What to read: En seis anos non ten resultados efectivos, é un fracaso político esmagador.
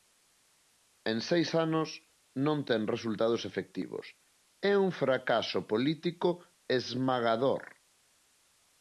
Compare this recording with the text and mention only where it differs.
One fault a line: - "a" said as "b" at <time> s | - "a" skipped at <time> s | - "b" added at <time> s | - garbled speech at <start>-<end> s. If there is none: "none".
none